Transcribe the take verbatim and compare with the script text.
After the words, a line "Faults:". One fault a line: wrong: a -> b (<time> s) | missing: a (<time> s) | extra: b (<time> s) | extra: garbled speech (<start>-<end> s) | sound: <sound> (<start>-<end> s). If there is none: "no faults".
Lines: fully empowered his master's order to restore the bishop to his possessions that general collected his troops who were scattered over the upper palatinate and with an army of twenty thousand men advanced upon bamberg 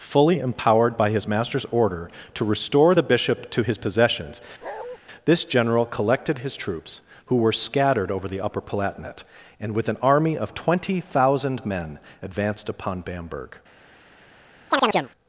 fully empowered by his master's order to restore the bishop to his possessions this general collected his troops who were scattered over the upper palatinate and with an army of twenty thousand men advanced upon bamberg
Faults:
extra: by (1.0 s)
sound: bark (4.6-5.0 s)
wrong: that -> this (5.2 s)
sound: chirp (14.7-15.1 s)